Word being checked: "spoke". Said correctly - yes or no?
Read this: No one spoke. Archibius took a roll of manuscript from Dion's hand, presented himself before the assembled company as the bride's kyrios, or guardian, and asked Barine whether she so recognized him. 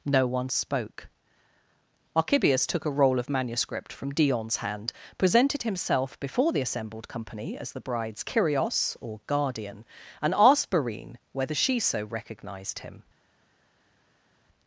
yes